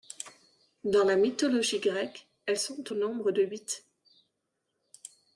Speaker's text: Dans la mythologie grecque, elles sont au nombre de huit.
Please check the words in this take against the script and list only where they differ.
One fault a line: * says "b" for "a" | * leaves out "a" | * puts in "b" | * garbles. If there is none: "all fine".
all fine